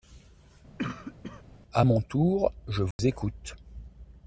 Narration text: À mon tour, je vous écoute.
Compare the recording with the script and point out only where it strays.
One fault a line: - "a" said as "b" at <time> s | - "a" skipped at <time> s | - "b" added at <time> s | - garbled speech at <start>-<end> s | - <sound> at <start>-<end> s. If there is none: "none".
- cough at 0.8-1.4 s
- dropout at 2.9-3.0 s